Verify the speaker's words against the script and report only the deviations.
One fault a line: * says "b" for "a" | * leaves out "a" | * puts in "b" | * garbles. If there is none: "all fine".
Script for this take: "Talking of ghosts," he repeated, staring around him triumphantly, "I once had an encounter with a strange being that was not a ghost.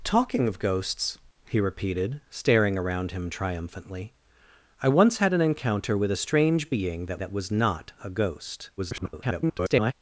* puts in "that"
* garbles